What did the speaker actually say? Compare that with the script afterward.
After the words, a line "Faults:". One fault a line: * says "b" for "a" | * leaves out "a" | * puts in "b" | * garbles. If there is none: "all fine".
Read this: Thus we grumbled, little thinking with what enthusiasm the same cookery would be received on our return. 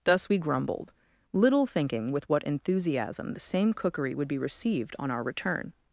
Thus we grumbled, little thinking with what enthusiasm the same cookery would be received on our return.
Faults:
all fine